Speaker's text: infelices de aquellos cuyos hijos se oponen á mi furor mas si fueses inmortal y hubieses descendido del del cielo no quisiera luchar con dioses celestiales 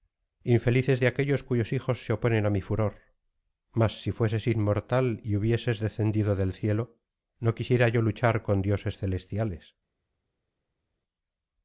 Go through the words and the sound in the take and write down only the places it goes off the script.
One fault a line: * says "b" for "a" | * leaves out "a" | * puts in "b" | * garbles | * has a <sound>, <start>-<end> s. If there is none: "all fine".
* leaves out "del"
* puts in "yo"